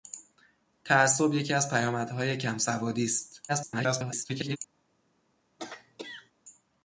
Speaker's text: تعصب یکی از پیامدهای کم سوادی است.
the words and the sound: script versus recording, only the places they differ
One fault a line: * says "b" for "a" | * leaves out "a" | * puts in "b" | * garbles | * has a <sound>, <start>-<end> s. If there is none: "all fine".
* garbles
* has a throat clearing, 5.6-6.3 s